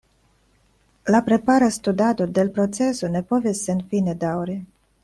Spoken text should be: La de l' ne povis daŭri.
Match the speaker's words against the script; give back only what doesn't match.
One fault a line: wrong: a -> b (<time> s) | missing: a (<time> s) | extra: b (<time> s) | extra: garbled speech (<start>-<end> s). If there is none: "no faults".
extra: prepara studado (1.3 s)
extra: proceso (2.6 s)
extra: senfine (3.7 s)